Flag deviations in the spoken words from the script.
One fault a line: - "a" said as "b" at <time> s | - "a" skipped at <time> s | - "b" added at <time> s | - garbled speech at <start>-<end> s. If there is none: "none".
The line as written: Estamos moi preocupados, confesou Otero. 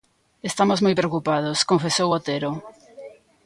none